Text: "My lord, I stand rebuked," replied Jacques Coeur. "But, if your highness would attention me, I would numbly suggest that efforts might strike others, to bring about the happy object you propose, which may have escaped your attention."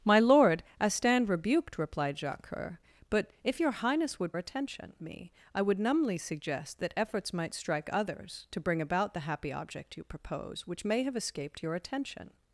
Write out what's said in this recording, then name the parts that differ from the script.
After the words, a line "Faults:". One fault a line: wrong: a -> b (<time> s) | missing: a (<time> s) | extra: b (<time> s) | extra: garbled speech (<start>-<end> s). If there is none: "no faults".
"My lord, I stand rebuked," replied Jacques Coeur. "But, if your highness would attention me, I would numbly suggest that efforts might strike others, to bring about the happy object you propose, which may have escaped your attention."
Faults:
no faults